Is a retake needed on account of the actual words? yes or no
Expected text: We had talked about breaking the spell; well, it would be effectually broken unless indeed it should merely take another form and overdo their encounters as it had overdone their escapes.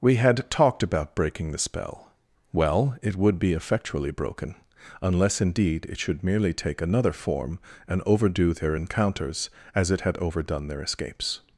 no